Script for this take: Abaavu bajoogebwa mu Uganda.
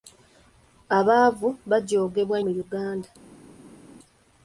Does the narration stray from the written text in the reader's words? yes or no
no